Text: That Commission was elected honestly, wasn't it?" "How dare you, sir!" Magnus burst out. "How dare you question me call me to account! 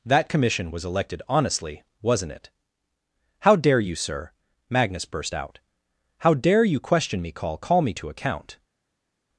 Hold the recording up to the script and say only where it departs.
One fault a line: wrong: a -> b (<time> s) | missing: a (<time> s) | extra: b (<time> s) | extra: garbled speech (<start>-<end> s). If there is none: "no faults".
extra: call (7.6 s)